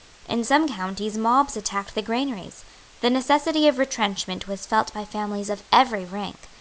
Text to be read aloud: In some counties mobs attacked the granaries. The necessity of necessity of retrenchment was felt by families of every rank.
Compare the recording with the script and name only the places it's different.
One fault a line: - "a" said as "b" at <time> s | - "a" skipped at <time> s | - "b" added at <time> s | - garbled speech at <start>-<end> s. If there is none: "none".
- "necessity of" skipped at 3.8 s